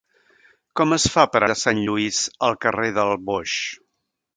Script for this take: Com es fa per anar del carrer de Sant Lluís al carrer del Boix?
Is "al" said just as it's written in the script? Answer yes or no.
yes